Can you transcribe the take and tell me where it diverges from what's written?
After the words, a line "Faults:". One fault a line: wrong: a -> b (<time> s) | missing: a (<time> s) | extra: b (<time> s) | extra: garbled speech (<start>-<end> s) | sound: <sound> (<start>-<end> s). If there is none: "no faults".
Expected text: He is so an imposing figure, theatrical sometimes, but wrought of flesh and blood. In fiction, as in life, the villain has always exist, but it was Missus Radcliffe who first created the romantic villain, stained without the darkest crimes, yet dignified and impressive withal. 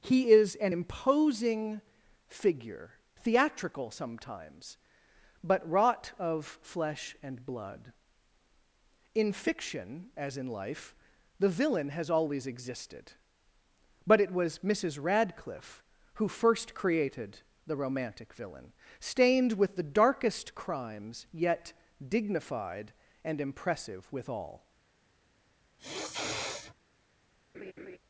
He is an imposing figure, theatrical sometimes, but wrought of flesh and blood. In fiction, as in life, the villain has always existed, but it was Missus Radcliffe who first created the romantic villain, stained with the darkest crimes, yet dignified and impressive withal.
Faults:
missing: so (0.6 s)
wrong: exist -> existed (12.4 s)
wrong: without -> with (19.5 s)
sound: sniff (25.8-26.7 s)
sound: laugh (27.5-28.0 s)